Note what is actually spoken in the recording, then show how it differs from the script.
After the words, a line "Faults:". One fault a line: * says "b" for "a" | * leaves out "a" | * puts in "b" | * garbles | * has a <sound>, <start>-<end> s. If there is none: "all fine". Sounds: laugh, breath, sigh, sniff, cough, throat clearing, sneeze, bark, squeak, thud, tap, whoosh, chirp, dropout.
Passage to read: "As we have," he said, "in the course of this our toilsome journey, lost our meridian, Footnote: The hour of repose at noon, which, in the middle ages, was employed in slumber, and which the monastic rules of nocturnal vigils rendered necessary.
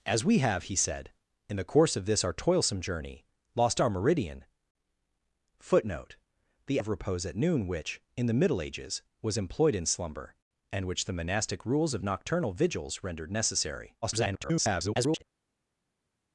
"As we have," he said, "in the course of this our toilsome journey, lost our meridian, Footnote: The of repose at noon, which, in the middle ages, was employed in slumber, and which the monastic rules of nocturnal vigils rendered necessary. [garbled]
Faults:
* leaves out "hour"
* garbles